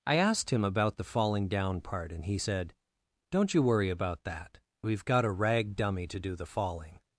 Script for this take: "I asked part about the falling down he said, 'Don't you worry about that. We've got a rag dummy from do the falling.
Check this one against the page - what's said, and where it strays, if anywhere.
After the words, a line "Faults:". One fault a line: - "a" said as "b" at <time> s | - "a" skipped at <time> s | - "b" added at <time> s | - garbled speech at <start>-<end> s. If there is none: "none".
"I asked him about the falling down part, and he said, 'Don't you worry about that. We've got a rag dummy to do the falling.
Faults:
- "part" said as "him" at 0.5 s
- "part and" added at 1.8 s
- "from" said as "to" at 6.1 s